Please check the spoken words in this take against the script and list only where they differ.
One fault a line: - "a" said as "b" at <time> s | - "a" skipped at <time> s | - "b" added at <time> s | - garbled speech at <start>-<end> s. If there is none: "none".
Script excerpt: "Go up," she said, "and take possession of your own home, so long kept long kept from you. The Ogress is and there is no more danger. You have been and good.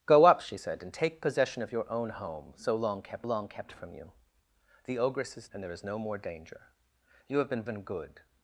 none